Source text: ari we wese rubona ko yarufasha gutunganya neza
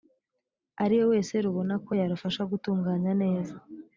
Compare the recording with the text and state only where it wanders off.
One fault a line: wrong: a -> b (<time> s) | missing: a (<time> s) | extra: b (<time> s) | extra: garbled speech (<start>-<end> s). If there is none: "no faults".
no faults